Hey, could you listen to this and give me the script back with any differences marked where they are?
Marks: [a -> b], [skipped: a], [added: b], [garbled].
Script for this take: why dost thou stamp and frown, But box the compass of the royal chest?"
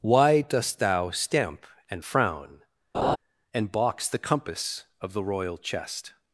why dost thou stamp and frown, [But -> And] box the compass of the royal chest?"